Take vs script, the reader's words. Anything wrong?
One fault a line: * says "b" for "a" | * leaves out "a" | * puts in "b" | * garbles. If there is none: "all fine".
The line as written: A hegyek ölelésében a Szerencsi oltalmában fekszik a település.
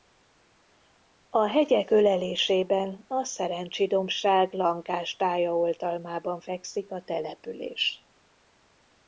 * puts in "dombság lankás tája"